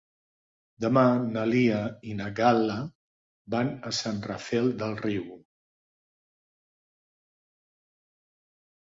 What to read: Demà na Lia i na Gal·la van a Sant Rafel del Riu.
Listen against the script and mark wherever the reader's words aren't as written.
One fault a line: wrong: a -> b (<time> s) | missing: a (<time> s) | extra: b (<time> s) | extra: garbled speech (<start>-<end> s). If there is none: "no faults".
no faults